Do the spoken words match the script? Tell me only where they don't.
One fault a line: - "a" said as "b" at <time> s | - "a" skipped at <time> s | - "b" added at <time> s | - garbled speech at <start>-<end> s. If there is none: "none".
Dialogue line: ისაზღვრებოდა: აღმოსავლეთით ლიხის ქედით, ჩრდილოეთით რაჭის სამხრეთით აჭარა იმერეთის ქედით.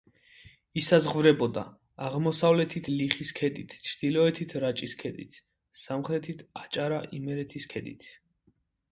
- "ქედით" added at 5.0 s